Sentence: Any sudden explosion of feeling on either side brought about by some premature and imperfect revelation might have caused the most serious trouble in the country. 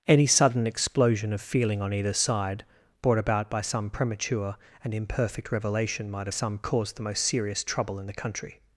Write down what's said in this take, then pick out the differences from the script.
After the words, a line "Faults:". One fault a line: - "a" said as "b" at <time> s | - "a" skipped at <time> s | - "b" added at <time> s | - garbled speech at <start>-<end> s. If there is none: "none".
Any sudden explosion of feeling on either side brought about by some premature and imperfect revelation might some caused the most serious trouble in the country.
Faults:
- "have" said as "some" at 6.3 s